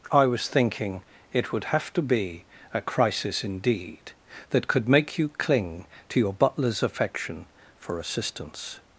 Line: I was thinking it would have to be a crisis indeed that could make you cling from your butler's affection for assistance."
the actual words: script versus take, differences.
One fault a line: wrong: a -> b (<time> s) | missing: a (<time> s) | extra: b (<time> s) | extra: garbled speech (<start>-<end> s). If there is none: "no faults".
wrong: from -> to (6.1 s)